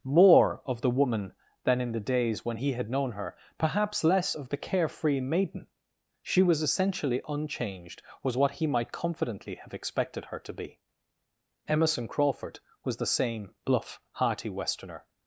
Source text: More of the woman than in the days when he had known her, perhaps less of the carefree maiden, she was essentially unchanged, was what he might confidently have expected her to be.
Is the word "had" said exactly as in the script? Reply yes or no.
yes